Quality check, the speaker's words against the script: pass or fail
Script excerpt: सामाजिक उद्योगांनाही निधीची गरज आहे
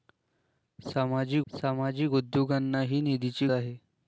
fail